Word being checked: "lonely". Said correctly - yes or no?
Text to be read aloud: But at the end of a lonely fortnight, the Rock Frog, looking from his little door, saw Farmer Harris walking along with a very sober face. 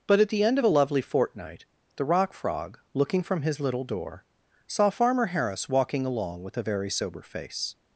no